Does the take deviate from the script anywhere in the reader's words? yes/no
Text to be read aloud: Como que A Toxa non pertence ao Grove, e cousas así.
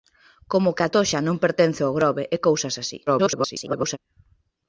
yes